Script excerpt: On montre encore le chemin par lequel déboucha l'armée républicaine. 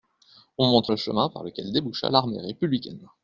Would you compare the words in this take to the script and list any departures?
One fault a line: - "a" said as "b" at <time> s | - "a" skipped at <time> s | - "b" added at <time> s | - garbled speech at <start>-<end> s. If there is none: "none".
- "encore" skipped at 0.9 s